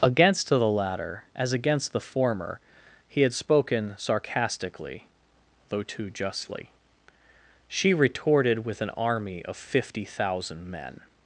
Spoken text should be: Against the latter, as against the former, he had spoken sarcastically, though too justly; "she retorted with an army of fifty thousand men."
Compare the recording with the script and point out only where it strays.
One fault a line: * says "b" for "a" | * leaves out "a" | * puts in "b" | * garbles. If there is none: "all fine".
all fine